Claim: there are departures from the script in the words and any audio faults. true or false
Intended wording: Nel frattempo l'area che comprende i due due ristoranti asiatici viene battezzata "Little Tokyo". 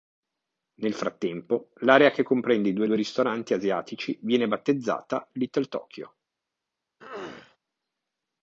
true